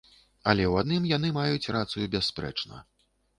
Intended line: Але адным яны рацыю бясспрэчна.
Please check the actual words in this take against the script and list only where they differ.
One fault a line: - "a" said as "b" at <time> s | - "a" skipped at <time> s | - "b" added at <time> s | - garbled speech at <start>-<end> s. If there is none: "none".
- "ў" added at 0.7 s
- "маюць" added at 1.4 s